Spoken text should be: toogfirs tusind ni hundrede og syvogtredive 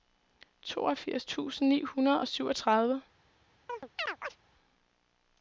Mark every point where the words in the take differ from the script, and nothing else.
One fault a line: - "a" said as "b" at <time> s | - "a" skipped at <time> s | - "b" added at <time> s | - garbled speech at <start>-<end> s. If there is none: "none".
none